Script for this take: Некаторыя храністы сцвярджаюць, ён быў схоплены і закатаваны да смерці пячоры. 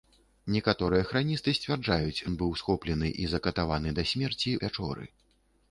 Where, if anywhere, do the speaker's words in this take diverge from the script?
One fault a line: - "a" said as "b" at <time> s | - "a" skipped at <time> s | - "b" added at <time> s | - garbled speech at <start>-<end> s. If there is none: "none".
none